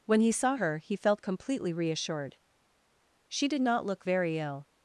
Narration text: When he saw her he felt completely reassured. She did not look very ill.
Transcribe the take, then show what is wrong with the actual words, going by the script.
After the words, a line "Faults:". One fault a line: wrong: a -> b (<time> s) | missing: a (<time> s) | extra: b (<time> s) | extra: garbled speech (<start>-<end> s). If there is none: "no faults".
When he saw her he felt completely reassured. She did not look very ill.
Faults:
no faults